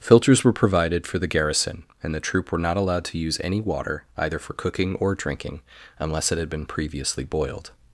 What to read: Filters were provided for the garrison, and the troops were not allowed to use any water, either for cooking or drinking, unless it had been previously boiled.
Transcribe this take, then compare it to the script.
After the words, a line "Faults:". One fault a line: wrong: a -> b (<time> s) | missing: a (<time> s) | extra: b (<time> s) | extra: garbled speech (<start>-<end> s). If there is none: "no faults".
Filters were provided for the garrison, and the troop were not allowed to use any water, either for cooking or drinking, unless it had been previously boiled.
Faults:
wrong: troops -> troop (2.2 s)